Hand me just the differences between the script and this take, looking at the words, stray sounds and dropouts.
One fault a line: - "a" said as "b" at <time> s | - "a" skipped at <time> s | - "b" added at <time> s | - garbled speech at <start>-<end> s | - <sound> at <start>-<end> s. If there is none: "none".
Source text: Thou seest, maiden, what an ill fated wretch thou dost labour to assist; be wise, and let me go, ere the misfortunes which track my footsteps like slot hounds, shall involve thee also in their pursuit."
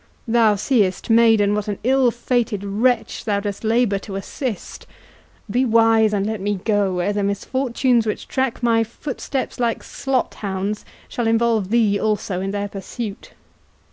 none